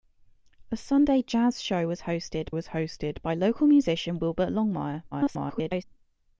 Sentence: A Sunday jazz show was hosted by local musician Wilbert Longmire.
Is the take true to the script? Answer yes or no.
no